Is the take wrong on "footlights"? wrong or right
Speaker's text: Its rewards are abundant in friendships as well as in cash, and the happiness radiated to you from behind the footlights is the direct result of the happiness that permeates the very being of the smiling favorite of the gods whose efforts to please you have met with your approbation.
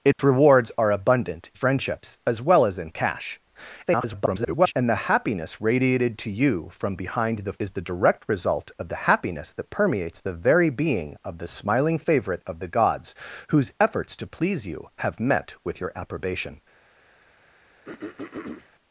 wrong